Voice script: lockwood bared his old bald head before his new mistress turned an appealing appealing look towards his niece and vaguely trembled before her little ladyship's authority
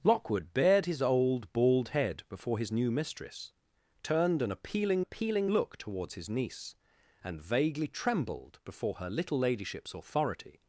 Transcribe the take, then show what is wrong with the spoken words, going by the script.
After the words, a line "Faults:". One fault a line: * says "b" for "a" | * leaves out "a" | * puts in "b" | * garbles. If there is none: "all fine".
lockwood bared his old bald head before his new mistress turned an appealing appealing look towards his niece and vaguely trembled before her little ladyship's authority
Faults:
all fine